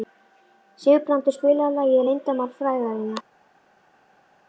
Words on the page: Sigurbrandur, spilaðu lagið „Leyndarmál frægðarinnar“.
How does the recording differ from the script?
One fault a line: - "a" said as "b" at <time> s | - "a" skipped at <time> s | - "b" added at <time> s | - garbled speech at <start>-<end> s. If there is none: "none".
none